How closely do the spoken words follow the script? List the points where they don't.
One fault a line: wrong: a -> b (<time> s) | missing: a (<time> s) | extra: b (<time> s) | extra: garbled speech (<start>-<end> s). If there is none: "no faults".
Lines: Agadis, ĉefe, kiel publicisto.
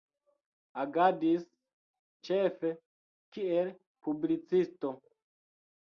no faults